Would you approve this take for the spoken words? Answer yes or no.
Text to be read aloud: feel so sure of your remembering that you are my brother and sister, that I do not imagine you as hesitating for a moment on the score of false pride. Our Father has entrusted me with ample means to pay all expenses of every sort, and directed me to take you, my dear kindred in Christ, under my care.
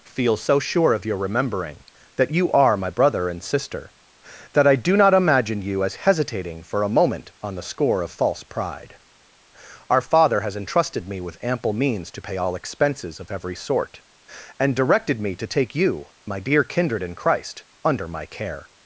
yes